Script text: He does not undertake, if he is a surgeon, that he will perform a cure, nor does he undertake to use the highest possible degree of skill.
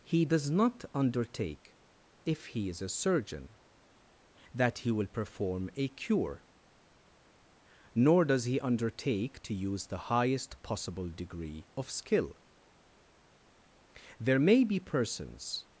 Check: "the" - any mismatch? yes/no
no